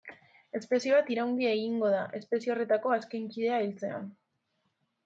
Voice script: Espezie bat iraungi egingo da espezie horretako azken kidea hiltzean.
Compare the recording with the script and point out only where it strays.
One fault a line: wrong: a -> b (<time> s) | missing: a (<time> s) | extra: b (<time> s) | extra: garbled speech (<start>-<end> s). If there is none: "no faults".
no faults